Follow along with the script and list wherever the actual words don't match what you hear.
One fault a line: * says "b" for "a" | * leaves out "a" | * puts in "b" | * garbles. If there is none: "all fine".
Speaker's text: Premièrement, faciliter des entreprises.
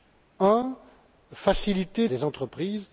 all fine